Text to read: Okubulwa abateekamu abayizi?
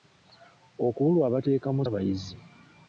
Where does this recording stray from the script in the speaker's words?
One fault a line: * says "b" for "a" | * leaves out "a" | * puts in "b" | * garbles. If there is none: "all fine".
all fine